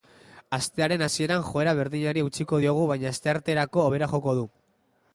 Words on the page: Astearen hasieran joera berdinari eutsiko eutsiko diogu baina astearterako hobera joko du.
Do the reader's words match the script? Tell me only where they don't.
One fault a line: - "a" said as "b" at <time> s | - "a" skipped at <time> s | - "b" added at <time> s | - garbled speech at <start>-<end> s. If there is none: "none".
- "eutsiko" skipped at 2.6 s